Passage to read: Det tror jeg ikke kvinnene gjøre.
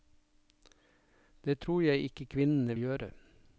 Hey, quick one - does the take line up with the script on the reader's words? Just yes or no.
yes